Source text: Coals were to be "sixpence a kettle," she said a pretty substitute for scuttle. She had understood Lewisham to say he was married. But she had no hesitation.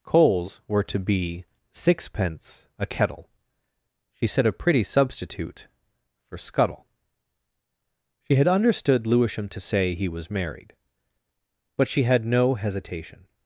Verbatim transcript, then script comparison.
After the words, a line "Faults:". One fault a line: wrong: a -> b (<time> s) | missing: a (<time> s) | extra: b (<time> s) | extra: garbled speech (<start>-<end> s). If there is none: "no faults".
Coals were to be "sixpence a kettle," she said a pretty substitute for scuttle. She had understood Lewisham to say he was married. But she had no hesitation.
Faults:
no faults